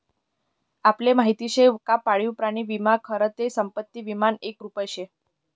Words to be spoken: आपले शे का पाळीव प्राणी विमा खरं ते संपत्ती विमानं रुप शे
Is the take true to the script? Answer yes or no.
no